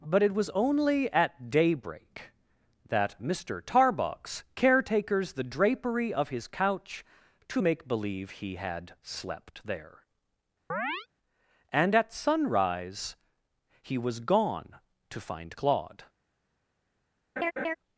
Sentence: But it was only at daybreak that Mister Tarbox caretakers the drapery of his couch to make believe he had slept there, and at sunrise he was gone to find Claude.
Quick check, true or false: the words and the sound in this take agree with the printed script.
false